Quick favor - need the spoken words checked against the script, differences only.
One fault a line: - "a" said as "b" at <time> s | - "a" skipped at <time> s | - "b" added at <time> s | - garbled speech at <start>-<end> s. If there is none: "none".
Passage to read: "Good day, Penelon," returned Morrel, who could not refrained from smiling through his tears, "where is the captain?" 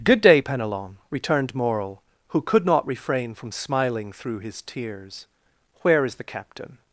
- "refrained" said as "refrain" at 2.9 s